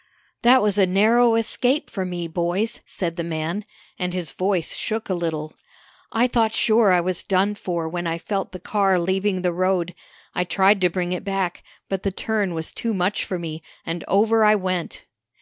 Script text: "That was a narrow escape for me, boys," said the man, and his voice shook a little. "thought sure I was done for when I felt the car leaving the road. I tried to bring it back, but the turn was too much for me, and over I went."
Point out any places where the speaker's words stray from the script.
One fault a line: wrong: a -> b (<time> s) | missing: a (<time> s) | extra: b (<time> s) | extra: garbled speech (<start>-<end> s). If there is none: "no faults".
extra: I (6.1 s)